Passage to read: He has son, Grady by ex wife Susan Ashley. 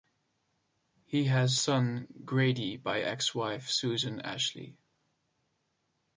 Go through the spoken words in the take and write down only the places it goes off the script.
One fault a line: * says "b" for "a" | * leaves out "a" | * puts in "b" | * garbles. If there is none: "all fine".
all fine